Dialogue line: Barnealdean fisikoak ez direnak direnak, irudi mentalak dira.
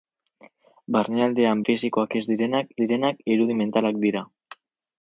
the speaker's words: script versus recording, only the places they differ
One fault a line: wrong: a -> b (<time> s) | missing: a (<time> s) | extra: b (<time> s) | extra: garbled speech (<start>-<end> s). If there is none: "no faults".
no faults